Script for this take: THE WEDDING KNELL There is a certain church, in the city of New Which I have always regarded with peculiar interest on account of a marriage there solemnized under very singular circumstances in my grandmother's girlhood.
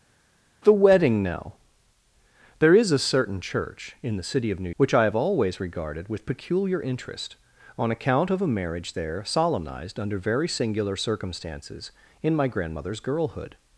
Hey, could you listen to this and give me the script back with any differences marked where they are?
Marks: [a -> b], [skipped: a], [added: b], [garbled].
THE WEDDING KNELL There is a certain church, in the city of New Which I have always regarded with peculiar interest on account of a marriage there solemnized under very singular circumstances in my grandmother's girlhood.